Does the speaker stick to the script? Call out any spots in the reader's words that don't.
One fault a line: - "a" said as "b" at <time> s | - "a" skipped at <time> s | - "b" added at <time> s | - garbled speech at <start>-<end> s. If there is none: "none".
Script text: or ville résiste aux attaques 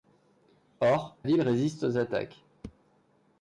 none